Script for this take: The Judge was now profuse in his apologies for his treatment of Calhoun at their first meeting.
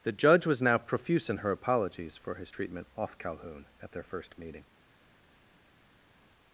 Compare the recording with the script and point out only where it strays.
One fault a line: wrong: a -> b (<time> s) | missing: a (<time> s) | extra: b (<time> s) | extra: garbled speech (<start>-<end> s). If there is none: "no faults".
wrong: his -> her (1.4 s)
wrong: of -> off (3.0 s)